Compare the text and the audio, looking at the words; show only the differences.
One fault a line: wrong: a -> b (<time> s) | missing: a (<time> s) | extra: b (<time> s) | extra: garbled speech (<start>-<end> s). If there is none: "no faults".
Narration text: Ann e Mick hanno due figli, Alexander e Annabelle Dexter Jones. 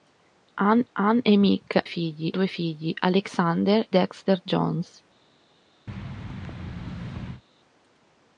extra: ann (0.9 s)
wrong: hanno -> figli (1.8 s)
missing: e Annabelle (3.9 s)